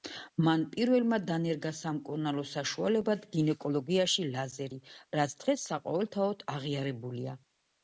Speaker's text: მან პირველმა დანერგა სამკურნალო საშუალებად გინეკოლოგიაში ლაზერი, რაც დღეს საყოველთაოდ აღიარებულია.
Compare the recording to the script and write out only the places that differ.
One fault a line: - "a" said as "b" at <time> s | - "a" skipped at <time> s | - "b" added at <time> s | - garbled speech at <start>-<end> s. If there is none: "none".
none